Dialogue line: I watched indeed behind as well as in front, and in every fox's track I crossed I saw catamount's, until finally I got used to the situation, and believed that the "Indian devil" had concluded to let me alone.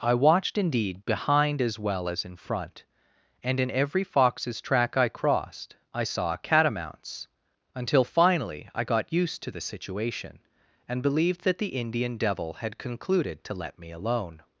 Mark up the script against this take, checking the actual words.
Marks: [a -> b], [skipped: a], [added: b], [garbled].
I watched indeed behind as well as in front, and in every fox's track I crossed I saw catamount's, until finally I got used to the situation, and believed that the "Indian devil" had concluded to let me alone.